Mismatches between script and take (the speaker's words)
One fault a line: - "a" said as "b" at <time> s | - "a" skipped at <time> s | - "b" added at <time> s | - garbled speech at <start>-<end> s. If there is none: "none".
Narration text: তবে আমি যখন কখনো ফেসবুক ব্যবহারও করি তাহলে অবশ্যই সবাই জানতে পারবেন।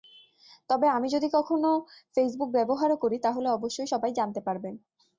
- "যখন" said as "যদি" at 1.1 s